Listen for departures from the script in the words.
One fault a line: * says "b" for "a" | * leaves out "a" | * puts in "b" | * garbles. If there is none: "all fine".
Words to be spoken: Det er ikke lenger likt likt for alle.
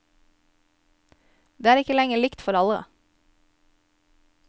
* leaves out "likt"